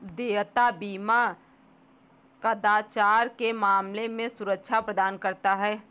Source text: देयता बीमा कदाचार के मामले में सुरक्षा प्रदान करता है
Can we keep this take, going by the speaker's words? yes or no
yes